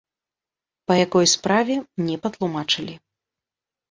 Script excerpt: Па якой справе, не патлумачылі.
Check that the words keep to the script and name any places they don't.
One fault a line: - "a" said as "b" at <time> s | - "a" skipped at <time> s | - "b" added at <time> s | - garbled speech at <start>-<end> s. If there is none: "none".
none